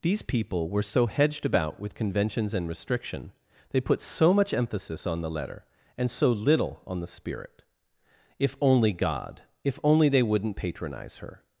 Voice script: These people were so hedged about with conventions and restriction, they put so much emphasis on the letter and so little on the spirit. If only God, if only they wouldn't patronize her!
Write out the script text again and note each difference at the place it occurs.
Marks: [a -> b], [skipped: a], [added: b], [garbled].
These people were so hedged about with conventions and restriction, they put so much emphasis on the letter and so little on the spirit. If only God, if only they wouldn't patronize her!